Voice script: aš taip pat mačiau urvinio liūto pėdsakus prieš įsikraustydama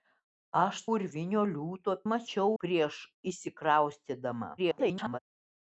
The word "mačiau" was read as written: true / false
false